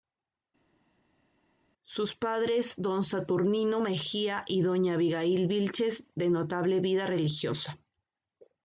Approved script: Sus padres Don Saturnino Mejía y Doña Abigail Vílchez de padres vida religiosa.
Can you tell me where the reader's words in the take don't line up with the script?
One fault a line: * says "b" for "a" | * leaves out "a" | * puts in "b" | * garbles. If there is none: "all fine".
* says "notable" for "padres"